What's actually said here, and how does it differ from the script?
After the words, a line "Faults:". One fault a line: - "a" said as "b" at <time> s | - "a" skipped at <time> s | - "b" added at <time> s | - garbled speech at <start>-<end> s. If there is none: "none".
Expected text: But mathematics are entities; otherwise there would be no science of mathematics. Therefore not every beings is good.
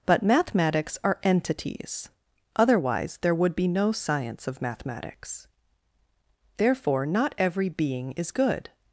But mathematics are entities; otherwise there would be no science of mathematics. Therefore not every being is good.
Faults:
- "beings" said as "being" at 7.7 s